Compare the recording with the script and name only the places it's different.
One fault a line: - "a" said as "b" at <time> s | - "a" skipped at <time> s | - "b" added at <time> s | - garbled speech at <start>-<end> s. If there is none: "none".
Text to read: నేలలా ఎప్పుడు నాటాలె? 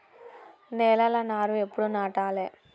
- "నారు" added at 1.2 s